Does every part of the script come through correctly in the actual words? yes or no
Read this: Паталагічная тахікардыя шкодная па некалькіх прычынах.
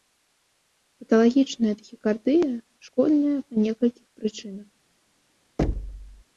yes